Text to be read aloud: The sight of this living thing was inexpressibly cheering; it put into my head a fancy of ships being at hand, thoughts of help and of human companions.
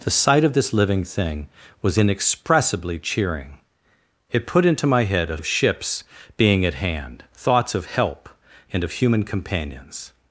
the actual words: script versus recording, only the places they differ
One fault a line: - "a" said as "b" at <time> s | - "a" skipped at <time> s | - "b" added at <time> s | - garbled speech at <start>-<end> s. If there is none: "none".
- "fancy" skipped at 5.4 s